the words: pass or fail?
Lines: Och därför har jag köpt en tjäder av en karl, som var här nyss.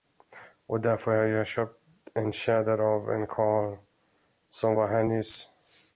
pass